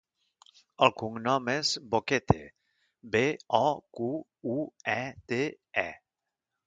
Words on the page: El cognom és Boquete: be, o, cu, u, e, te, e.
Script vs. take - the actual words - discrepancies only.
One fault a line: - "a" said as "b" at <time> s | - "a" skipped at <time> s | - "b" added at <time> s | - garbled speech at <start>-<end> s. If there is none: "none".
none